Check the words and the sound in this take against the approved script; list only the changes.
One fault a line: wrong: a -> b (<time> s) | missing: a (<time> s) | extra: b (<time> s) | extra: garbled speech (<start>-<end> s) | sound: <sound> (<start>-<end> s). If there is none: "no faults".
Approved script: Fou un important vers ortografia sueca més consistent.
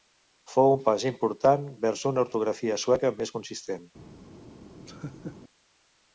extra: pas (0.9 s)
extra: una (2.1 s)
sound: laugh (4.9-5.4 s)